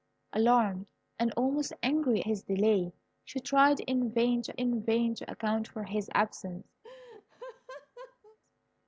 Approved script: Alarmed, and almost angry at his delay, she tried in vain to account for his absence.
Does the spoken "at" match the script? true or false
false